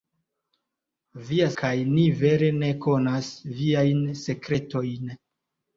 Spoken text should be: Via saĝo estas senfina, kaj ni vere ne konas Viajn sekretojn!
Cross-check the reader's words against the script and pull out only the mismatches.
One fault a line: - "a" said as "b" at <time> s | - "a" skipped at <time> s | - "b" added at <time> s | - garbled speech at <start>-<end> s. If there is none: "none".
- "saĝo estas senfina" skipped at 1.5 s